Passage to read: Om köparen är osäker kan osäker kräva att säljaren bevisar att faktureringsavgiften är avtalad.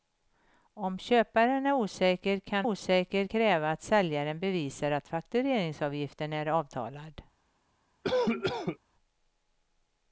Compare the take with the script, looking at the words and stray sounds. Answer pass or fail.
fail